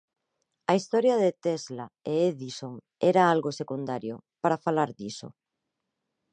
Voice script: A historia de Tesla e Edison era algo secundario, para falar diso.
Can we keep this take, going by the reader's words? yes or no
yes